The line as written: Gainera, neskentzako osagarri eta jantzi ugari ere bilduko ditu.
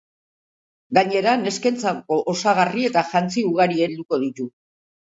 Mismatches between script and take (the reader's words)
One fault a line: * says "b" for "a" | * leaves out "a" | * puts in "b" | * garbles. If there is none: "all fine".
* leaves out "ere"